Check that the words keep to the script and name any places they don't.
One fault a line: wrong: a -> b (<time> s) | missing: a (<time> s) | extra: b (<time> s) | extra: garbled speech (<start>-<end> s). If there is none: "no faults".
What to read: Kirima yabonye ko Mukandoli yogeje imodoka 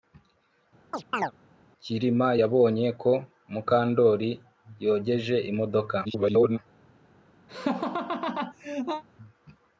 extra: garbled speech (6.0-6.6 s)